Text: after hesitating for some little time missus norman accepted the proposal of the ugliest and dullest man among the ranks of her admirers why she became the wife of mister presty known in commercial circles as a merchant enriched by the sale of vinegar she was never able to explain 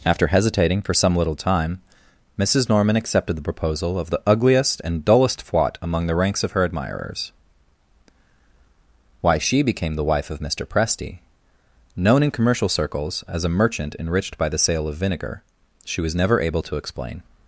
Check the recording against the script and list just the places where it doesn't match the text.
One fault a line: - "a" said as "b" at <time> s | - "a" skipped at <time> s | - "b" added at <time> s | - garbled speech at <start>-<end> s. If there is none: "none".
- "man" said as "fwat" at 5.5 s